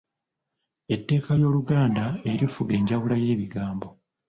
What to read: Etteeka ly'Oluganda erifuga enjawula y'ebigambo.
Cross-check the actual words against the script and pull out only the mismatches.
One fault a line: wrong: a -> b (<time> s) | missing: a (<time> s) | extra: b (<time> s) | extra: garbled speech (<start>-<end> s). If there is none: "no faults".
no faults